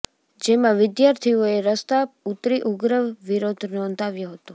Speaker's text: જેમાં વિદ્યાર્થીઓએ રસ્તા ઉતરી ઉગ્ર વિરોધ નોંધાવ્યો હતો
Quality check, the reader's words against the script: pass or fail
pass